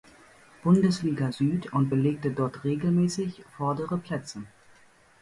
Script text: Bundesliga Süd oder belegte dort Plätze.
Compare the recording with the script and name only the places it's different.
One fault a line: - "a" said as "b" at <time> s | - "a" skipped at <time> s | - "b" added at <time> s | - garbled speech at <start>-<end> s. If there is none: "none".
- "oder" said as "und" at 1.7 s
- "regelmäßig vordere" added at 2.6 s